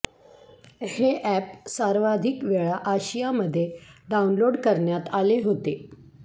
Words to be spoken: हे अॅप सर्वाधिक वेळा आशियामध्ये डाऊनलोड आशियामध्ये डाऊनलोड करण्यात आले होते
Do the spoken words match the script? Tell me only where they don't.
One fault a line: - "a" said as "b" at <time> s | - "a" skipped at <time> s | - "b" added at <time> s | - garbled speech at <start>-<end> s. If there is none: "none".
- "आशियामध्ये डाऊनलोड" skipped at 4.6 s